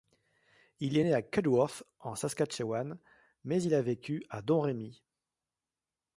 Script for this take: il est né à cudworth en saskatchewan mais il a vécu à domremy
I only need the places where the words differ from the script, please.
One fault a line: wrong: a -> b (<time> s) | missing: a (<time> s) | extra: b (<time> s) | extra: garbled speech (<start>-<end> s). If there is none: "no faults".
no faults